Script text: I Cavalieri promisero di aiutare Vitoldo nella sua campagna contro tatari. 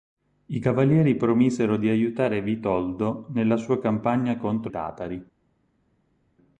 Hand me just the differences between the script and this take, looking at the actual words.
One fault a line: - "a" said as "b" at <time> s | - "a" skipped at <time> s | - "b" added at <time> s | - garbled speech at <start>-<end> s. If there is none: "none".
none